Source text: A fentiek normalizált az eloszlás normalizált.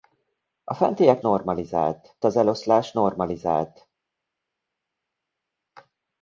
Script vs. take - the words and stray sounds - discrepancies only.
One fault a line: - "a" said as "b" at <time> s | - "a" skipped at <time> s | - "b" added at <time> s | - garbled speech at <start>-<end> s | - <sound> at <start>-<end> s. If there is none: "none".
none